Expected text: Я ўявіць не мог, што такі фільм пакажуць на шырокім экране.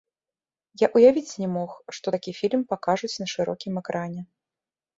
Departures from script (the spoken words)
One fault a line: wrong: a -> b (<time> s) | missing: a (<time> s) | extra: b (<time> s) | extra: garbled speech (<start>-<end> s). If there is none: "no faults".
no faults